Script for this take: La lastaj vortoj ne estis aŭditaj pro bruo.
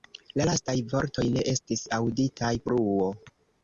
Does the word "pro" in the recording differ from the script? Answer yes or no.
yes